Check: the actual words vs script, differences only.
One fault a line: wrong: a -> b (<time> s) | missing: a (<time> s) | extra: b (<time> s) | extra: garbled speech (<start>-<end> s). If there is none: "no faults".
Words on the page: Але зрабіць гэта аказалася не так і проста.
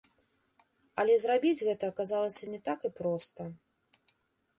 no faults